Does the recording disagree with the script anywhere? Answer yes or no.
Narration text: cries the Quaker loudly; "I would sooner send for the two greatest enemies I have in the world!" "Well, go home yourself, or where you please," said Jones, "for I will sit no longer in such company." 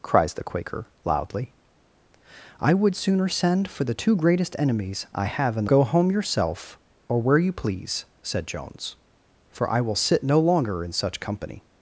yes